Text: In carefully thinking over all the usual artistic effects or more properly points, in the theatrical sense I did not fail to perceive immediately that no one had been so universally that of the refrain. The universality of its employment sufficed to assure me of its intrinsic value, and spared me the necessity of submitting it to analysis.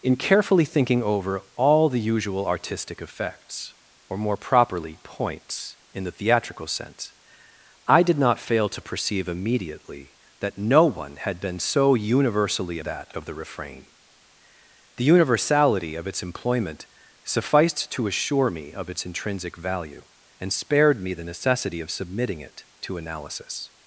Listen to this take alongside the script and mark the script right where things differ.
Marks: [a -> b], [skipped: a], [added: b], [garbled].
In carefully thinking over all the usual artistic effects or more properly points, in the theatrical sense I did not fail to perceive immediately that no one had been so universally that of the refrain. The universality of its employment sufficed to assure me of its intrinsic value, and spared me the necessity of submitting it to analysis.